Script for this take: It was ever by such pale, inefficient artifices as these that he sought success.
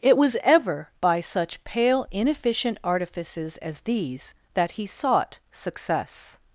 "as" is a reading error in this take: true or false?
false